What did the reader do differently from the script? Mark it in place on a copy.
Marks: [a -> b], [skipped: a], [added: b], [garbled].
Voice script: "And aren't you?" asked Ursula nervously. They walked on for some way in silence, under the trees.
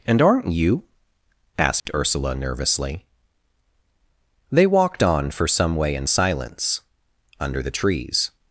"And aren't you?" asked Ursula nervously. They walked on for some way in silence, under the trees.